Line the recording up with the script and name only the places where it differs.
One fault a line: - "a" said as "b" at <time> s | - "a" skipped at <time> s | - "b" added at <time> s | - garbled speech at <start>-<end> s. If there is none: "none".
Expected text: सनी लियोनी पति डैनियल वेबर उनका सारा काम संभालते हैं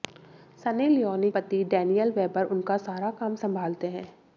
none